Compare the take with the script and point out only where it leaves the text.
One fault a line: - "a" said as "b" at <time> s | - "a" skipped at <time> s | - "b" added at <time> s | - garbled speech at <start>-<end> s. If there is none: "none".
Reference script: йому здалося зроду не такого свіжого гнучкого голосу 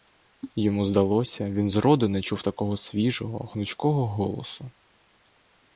- "він" added at 1.5 s
- "чув" added at 2.2 s